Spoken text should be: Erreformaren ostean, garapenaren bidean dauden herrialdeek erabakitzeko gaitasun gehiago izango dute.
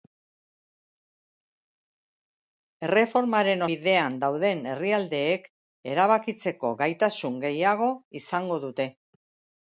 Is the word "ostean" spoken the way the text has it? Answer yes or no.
no